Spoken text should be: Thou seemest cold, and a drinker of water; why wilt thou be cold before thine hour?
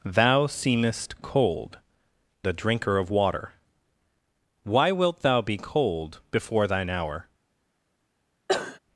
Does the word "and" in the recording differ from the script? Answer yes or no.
yes